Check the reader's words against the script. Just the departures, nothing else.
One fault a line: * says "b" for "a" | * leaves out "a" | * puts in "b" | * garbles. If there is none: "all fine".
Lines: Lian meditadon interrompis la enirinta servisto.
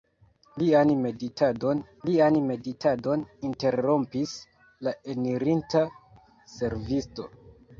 * puts in "lian meditadon"